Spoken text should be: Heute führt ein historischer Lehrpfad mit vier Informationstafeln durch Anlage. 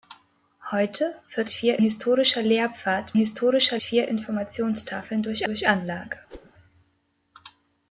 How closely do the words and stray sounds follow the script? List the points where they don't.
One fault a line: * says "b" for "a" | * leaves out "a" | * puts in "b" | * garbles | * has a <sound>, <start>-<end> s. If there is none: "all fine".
* says "vier" for "ein"
* says "historischer" for "mit"
* puts in "durch"
* has a whoosh, 6.3-6.5 s